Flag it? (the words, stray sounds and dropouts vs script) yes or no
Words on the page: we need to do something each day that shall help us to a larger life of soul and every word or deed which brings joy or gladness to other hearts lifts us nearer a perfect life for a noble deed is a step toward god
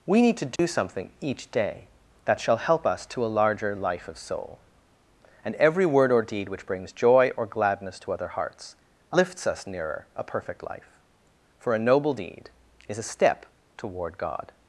yes